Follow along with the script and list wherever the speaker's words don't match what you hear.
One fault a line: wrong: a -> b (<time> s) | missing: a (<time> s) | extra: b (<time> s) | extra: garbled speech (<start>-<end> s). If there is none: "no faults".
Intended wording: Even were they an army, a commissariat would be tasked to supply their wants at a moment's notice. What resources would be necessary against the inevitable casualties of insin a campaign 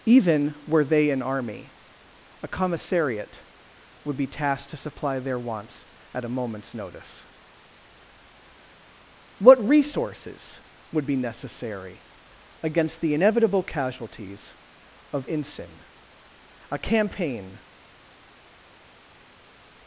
no faults